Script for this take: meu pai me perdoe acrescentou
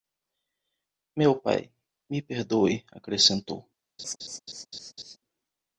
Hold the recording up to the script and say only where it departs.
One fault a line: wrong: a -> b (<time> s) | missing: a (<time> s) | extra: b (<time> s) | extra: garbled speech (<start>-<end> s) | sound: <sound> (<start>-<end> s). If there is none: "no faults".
sound: laugh (4.0-5.2 s)